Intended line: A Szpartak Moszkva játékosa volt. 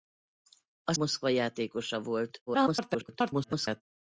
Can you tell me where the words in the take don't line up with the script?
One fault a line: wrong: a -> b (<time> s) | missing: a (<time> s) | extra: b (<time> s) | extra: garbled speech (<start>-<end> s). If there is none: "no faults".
missing: Szpartak (0.9 s)
extra: garbled speech (2.5-3.8 s)